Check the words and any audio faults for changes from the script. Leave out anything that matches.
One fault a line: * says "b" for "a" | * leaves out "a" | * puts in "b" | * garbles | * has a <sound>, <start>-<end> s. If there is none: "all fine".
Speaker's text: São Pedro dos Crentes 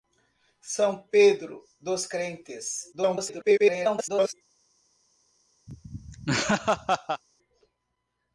* garbles
* has a laugh, 5.7-7.2 s